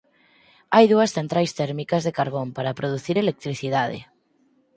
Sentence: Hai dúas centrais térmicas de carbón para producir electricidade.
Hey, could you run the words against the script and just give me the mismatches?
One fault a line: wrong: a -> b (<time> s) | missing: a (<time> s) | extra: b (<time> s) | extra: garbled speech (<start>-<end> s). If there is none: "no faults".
no faults